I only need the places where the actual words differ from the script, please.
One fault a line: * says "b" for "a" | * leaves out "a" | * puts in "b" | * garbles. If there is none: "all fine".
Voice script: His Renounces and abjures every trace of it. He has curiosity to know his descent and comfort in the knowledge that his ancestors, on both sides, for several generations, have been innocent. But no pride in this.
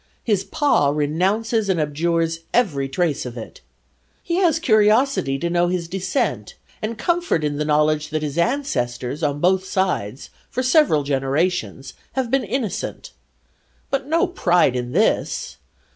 * puts in "Pa"